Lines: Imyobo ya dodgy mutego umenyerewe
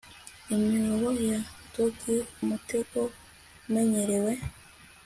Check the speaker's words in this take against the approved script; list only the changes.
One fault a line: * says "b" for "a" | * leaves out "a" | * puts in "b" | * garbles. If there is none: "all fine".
all fine